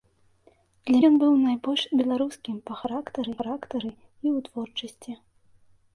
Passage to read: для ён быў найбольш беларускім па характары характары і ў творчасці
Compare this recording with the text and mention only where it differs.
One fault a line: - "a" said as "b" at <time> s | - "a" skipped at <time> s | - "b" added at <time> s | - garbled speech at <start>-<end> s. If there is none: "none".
none